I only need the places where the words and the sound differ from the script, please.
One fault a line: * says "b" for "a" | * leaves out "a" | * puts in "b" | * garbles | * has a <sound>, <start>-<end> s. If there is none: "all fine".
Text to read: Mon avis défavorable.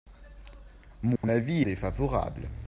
* has a dropout, 1.2-1.2 s